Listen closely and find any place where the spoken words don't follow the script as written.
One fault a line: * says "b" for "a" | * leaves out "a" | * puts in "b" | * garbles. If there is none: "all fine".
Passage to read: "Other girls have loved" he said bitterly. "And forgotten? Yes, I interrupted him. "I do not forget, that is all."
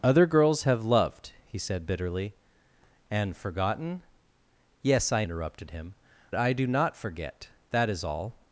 all fine